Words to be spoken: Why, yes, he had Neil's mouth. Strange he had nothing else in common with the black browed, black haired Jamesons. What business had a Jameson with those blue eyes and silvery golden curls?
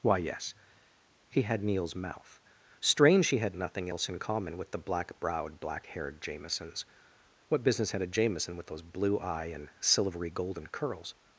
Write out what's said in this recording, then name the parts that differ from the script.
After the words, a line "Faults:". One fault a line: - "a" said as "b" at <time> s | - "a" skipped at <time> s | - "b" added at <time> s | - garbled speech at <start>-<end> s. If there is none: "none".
Why, yes, he had Neil's mouth. Strange he had nothing else in common with the black browed, black haired Jamesons. What business had a Jameson with those blue eye and silvery golden curls?
Faults:
- "eyes" said as "eye" at 9.2 s